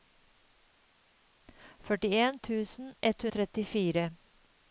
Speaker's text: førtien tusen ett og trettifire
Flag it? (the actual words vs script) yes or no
no